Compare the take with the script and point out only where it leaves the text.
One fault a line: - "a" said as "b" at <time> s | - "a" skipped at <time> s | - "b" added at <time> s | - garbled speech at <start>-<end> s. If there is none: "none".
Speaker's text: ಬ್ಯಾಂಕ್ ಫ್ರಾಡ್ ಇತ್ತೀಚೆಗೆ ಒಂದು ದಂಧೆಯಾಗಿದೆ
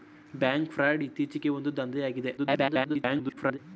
- garbled speech at 2.4-3.6 s